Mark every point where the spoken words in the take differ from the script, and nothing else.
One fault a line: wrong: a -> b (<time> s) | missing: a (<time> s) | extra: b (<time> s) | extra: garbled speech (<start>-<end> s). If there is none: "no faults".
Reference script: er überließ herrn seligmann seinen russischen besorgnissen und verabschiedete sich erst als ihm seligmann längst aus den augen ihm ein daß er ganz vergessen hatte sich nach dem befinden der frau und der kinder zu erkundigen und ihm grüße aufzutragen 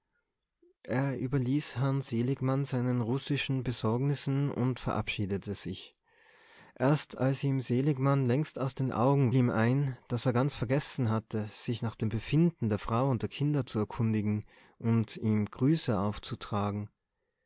no faults